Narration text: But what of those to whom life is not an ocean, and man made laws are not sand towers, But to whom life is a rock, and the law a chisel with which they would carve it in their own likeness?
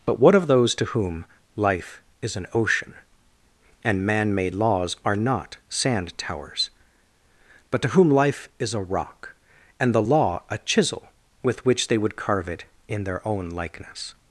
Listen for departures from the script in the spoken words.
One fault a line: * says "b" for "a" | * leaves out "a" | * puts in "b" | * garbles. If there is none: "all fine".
* leaves out "not"